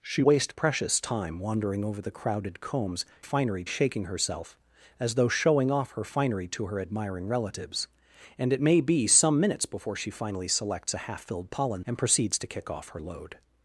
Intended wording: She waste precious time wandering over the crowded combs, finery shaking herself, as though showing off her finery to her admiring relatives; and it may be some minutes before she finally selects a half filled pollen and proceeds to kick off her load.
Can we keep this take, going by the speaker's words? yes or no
yes